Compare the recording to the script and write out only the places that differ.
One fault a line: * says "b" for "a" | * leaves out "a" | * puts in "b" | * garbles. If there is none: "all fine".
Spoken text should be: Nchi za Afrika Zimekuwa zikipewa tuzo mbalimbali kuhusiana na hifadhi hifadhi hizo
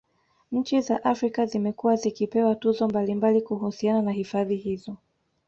* leaves out "hifadhi"